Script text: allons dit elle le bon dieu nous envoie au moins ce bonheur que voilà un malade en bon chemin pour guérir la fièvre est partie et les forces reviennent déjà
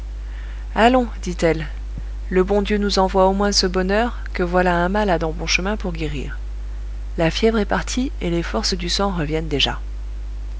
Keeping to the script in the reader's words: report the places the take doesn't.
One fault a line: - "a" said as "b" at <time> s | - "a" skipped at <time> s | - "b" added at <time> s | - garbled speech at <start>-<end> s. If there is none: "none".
- "du sang" added at 8.7 s